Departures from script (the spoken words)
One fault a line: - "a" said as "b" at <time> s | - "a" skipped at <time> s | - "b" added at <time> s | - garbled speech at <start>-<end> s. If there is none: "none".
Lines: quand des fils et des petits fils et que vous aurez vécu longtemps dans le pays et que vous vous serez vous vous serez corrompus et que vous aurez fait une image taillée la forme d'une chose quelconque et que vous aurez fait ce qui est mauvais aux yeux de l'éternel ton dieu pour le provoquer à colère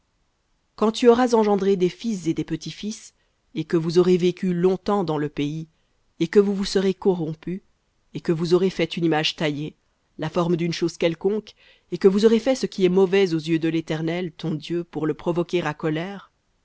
- "tu auras engendré" added at 0.9 s
- "vous vous serez" skipped at 7.0 s